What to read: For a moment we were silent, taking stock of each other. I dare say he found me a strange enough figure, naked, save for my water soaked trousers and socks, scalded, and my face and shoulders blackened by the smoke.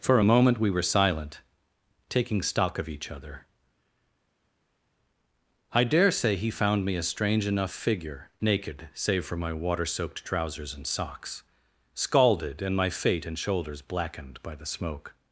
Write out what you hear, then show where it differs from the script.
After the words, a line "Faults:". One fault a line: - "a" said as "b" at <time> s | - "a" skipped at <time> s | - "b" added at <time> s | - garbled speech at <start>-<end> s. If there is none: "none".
For a moment we were silent, taking stock of each other. I dare say he found me a strange enough figure, naked, save for my water soaked trousers and socks, scalded, and my fate and shoulders blackened by the smoke.
Faults:
- "face" said as "fate" at 12.9 s